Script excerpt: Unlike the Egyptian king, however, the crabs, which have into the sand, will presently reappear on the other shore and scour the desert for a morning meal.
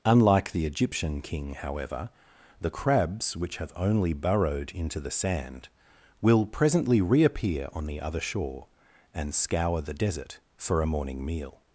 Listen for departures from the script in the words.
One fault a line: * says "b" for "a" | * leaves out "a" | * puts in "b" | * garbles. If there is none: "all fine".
* puts in "only burrowed"